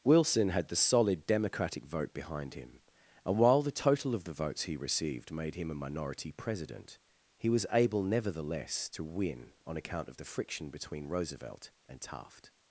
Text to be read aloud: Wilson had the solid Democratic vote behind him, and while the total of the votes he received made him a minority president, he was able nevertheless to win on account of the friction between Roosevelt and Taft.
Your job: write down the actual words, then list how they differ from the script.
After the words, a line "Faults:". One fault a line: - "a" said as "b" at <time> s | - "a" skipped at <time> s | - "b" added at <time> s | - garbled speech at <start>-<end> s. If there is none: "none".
Wilson had the solid Democratic vote behind him, and while the total of the votes he received made him a minority president, he was able nevertheless to win on account of the friction between Roosevelt and Taft.
Faults:
none